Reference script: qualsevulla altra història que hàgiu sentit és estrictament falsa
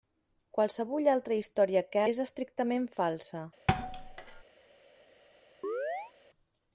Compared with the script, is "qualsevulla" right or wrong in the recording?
right